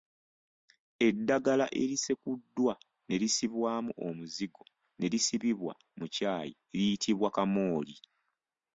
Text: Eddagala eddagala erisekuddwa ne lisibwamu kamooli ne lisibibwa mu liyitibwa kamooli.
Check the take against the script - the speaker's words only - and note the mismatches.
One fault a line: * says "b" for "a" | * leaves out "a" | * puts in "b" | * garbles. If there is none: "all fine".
* leaves out "eddagala"
* says "omuzigo" for "kamooli"
* puts in "kyayi"